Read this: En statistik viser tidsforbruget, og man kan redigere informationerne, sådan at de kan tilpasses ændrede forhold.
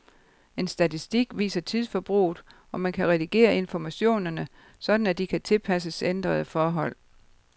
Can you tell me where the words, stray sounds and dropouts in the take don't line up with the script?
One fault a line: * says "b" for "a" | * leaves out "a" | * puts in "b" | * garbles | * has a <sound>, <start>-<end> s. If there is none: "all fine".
all fine